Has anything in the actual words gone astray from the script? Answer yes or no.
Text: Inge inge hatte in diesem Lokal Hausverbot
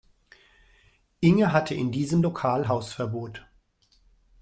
yes